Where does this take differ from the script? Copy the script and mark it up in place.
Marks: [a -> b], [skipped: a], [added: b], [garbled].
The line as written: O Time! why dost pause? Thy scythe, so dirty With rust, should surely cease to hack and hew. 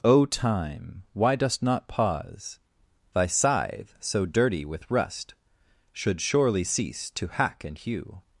O Time! why dost [added: not] pause? Thy scythe, so dirty With rust, should surely cease to hack and hew.